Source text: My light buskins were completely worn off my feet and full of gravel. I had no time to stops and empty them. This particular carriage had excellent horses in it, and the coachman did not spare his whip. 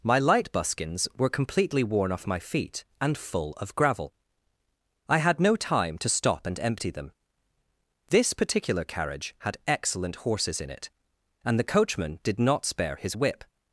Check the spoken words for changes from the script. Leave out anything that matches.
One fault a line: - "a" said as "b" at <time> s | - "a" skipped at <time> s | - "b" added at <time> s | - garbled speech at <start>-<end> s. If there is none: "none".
- "stops" said as "stop" at 6.1 s